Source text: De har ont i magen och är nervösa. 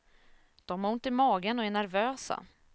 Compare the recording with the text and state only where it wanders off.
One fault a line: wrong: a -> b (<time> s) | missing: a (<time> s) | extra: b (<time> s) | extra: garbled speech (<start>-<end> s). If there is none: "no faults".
no faults